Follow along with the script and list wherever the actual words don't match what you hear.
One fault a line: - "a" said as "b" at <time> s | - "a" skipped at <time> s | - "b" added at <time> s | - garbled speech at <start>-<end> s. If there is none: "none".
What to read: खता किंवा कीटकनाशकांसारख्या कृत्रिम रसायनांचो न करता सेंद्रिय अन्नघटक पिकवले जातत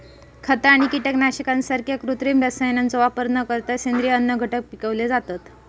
- "किंवा" said as "आणि" at 0.7 s
- "वापर" added at 3.0 s